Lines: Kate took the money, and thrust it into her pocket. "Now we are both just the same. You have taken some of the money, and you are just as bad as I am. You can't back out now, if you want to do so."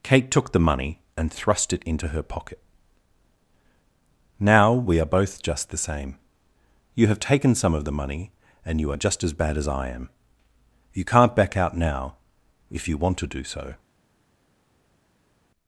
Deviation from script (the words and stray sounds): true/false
false